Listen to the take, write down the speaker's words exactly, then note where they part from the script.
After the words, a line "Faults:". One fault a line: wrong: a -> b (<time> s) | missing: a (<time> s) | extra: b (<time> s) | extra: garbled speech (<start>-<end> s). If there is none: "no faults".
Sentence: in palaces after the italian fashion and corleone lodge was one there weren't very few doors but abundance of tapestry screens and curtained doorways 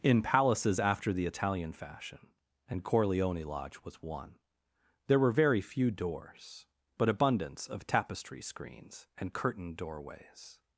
in palaces after the italian fashion and corleone lodge was one there were very few doors but abundance of tapestry screens and curtained doorways
Faults:
wrong: weren't -> were (5.2 s)